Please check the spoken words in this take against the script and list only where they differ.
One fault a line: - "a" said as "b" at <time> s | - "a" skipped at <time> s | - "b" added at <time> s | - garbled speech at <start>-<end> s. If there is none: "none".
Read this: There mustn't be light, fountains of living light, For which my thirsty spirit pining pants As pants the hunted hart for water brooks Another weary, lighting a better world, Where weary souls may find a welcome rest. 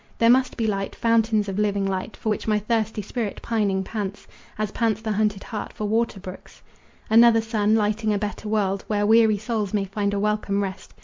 - "mustn't" said as "must" at 0.3 s
- "weary" said as "sun" at 7.4 s